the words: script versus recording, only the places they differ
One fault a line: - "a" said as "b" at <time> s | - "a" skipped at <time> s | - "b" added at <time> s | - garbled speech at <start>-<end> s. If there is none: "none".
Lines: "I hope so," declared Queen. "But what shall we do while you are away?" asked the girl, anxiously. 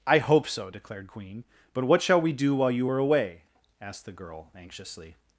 none